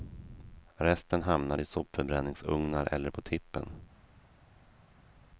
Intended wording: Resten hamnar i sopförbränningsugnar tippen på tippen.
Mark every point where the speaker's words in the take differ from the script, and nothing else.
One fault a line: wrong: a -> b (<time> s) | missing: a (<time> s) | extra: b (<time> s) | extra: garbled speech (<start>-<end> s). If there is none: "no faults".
wrong: tippen -> eller (2.9 s)